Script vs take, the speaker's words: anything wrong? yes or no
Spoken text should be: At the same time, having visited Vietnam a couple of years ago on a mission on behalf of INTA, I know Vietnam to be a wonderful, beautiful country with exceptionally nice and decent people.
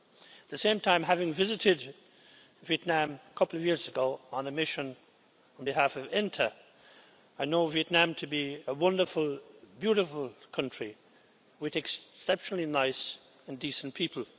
no